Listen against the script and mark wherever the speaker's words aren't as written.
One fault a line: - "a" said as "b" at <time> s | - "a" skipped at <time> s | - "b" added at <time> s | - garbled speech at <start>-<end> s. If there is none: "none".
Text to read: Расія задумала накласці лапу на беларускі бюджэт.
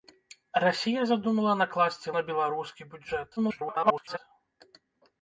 - "лапу" skipped at 2.1 s
- garbled speech at 3.4-4.2 s